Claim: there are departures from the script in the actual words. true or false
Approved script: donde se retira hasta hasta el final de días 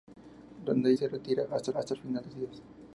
false